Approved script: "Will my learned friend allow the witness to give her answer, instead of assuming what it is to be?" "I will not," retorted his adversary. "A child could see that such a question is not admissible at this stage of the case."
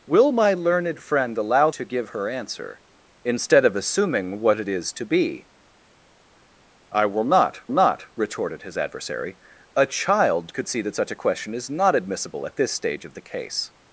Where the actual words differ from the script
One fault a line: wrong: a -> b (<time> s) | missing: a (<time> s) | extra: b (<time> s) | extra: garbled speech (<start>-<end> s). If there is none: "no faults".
missing: the witness (1.7 s)
extra: not (7.7 s)